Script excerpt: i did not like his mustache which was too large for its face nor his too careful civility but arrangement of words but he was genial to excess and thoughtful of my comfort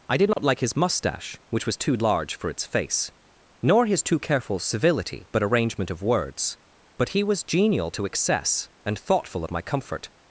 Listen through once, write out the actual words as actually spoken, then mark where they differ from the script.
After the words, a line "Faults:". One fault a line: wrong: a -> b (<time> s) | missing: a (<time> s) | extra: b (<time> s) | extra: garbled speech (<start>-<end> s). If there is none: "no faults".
i did not like his mustache which was too large for its face nor his too careful civility but arrangement of words but he was genial to excess and thoughtful of my comfort
Faults:
no faults